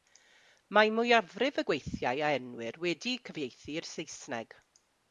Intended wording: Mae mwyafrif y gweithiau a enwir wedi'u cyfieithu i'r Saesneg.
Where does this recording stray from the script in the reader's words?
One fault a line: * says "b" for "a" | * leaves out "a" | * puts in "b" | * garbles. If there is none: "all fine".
all fine